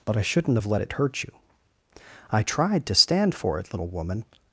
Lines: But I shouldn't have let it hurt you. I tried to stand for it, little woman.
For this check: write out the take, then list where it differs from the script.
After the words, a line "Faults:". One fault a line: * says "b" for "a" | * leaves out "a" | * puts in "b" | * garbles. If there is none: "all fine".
But I shouldn't have let it hurt you. I tried to stand for it, little woman.
Faults:
all fine